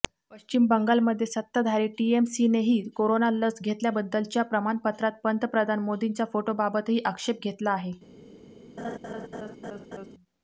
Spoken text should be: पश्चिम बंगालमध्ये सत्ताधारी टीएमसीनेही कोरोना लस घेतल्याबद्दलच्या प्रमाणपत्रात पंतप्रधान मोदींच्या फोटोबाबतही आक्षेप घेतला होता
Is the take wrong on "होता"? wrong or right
wrong